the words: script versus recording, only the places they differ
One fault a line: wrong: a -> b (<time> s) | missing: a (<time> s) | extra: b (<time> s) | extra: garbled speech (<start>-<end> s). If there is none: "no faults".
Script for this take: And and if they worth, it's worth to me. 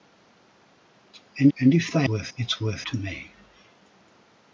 no faults